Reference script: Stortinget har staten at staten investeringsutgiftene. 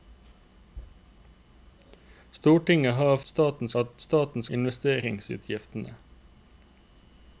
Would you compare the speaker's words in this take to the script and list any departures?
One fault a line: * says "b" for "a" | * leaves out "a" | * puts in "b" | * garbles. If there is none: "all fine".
all fine